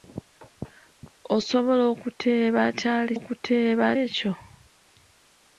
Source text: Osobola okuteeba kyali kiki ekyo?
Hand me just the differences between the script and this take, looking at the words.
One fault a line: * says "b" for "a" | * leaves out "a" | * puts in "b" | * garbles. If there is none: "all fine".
* says "okuteeba" for "kiki"